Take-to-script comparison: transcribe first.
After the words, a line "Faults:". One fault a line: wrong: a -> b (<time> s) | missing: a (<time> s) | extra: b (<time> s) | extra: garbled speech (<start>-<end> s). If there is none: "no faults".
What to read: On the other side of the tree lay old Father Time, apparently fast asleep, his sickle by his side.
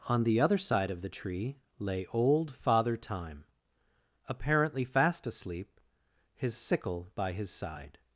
On the other side of the tree lay old Father Time, apparently fast asleep, his sickle by his side.
Faults:
no faults